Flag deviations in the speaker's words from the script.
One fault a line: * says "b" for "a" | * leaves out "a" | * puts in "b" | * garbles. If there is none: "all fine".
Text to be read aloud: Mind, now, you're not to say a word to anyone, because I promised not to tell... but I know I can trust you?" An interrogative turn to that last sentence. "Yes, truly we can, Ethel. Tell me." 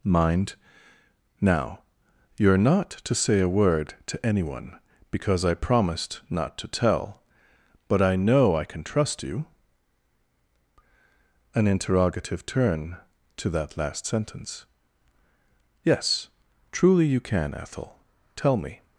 * says "you" for "we"